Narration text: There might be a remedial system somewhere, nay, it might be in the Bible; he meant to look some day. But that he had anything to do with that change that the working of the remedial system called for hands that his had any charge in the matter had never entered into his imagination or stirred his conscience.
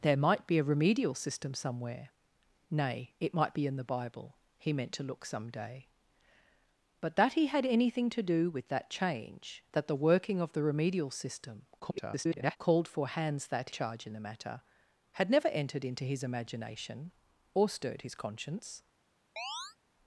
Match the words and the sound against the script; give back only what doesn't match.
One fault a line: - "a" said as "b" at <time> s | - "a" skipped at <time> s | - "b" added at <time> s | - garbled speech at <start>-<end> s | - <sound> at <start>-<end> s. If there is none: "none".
- garbled speech at 11.8-12.6 s
- "his had any" skipped at 13.7 s
- chirp at 19.4-19.8 s